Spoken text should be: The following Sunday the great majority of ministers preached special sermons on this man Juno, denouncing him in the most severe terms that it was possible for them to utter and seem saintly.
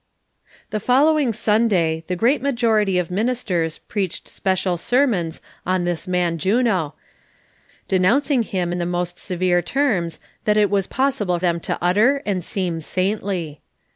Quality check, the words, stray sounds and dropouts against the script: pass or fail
fail